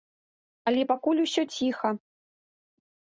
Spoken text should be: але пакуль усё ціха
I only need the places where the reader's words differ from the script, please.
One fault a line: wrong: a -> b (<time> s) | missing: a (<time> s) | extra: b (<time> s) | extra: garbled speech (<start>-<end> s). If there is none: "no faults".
no faults